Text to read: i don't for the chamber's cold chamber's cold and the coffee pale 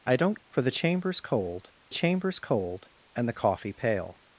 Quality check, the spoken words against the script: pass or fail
pass